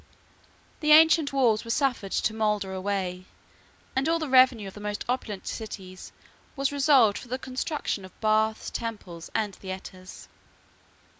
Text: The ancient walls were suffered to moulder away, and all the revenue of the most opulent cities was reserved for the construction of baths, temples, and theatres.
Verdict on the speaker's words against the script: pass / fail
pass